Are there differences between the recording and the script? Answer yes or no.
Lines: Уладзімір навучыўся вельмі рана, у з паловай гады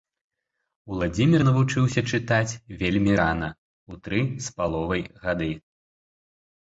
yes